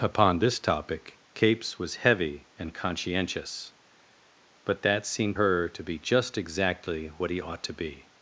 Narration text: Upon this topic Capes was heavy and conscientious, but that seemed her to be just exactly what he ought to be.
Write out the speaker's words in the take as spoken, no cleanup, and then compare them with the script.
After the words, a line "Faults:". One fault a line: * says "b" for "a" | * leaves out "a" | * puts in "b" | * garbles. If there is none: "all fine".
Upon this topic Capes was heavy and conscientious, but that seemed her to be just exactly what he ought to be.
Faults:
all fine